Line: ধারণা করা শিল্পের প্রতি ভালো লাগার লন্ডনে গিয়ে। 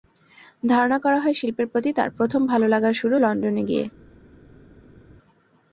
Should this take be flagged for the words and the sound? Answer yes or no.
yes